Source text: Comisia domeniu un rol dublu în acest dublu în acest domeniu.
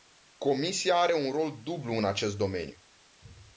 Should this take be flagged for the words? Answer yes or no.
yes